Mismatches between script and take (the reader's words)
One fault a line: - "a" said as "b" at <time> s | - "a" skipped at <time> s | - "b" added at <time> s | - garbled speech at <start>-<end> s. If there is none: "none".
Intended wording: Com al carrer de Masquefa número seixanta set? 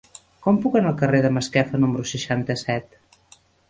- "puc anar" added at 0.6 s